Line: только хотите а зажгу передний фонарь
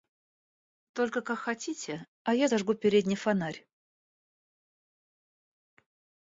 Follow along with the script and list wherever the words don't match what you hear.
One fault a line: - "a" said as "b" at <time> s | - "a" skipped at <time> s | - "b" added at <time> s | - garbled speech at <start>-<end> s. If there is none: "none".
- "как" added at 1.2 s
- "я" added at 2.3 s